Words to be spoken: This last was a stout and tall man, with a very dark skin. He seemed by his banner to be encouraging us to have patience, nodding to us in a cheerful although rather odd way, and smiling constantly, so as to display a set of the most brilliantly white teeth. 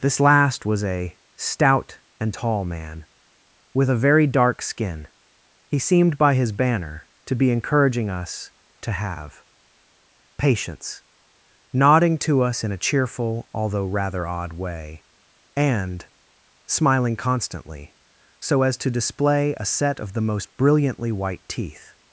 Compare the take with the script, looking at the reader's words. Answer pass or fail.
pass